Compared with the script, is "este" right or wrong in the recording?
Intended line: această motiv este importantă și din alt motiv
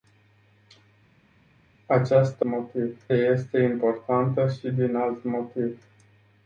right